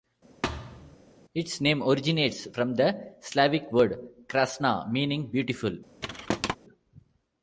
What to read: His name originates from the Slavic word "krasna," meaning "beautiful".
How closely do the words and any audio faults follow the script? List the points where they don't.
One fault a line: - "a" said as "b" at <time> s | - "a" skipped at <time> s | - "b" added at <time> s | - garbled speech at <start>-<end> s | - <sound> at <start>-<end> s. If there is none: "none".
- thud at 0.4-1.0 s
- "His" said as "Its" at 1.3 s
- thud at 6.0-6.6 s